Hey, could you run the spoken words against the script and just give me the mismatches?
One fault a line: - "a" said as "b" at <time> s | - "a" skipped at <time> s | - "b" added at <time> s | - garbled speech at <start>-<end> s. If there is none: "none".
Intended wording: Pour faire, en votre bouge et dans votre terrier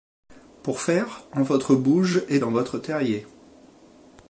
none